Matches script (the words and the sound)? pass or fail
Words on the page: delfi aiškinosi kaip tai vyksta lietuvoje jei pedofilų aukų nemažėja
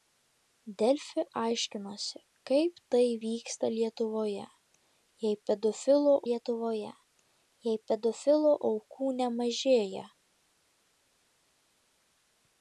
fail